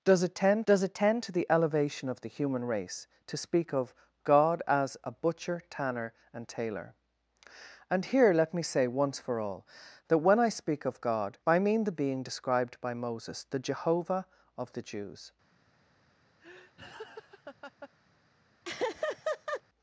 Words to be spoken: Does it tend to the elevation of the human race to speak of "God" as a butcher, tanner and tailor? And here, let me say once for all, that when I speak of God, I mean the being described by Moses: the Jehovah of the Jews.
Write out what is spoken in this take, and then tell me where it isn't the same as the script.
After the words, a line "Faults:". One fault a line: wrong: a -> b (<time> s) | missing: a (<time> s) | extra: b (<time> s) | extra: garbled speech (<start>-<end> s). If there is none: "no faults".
Does it tend does it tend to the elevation of the human race to speak of "God" as a butcher, tanner and tailor? And here, let me say once for all, that when I speak of God, I mean the being described by Moses: the Jehovah of the Jews.
Faults:
extra: does it tend (0.6 s)